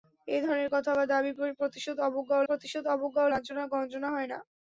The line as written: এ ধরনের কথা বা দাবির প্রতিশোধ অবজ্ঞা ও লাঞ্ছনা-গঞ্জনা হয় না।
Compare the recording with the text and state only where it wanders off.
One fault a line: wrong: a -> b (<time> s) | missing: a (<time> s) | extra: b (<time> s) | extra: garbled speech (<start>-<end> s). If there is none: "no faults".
extra: প্রতিশোধ অবজ্ঞা ও (2.5 s)